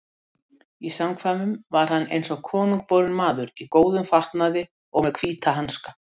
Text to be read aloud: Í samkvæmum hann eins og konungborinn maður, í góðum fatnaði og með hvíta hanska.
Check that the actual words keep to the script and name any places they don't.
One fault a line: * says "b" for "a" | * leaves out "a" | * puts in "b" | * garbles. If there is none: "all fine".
* puts in "var"